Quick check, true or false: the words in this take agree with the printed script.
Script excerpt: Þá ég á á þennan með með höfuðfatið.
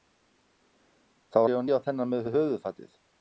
true